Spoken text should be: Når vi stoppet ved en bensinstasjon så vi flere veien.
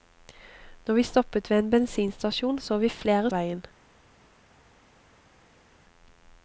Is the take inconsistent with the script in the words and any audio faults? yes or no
no